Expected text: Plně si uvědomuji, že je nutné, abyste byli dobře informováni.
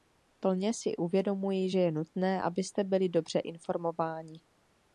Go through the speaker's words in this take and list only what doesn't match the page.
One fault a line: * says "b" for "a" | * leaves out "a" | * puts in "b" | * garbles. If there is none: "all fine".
all fine